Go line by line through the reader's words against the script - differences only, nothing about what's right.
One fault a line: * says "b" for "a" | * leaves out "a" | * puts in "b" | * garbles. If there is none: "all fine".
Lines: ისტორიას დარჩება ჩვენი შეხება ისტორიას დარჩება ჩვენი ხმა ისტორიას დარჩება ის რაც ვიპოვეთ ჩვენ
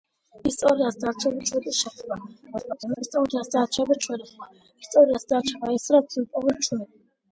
* garbles